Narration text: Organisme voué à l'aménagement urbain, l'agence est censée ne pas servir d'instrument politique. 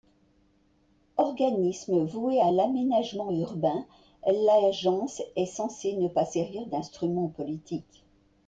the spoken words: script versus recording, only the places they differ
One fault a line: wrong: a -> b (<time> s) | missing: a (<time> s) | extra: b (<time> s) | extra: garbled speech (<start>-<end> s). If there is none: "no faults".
no faults